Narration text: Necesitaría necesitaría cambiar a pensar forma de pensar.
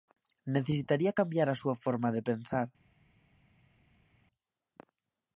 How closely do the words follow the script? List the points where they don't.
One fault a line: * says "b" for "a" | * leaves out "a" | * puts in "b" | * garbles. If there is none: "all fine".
* leaves out "necesitaría"
* says "súa" for "pensar"